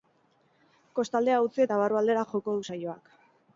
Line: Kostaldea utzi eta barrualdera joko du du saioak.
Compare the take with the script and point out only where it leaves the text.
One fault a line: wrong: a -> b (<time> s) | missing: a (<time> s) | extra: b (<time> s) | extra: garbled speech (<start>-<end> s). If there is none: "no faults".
missing: du (2.7 s)